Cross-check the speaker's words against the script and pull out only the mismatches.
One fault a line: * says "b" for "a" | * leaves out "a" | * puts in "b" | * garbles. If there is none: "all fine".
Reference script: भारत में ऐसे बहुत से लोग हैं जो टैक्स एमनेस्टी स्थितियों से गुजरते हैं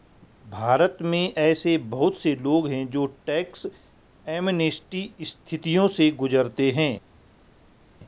all fine